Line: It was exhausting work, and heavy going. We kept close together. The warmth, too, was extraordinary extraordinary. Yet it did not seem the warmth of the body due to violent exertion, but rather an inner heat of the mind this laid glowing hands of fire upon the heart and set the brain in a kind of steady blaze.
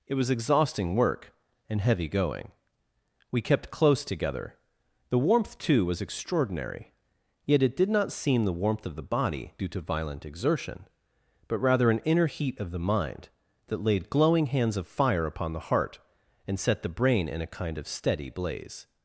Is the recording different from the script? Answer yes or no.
yes